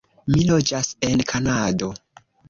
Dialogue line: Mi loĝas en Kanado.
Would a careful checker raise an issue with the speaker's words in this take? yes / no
no